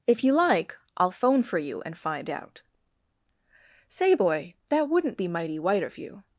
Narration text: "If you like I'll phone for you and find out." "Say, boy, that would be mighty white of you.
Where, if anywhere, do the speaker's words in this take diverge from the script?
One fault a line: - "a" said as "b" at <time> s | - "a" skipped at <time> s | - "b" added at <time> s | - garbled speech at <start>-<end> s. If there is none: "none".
- "would" said as "wouldn't" at 4.9 s